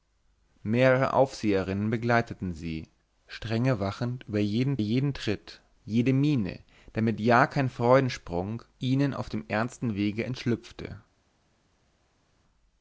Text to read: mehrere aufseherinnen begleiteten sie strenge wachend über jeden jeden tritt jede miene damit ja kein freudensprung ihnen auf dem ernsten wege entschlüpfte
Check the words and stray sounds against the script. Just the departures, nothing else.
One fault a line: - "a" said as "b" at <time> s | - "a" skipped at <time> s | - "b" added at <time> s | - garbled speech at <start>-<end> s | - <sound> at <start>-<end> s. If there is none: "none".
none